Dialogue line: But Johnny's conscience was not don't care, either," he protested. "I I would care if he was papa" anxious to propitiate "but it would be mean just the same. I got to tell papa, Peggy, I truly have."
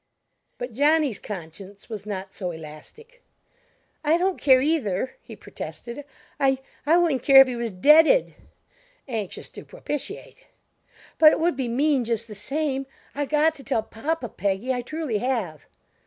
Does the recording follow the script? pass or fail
fail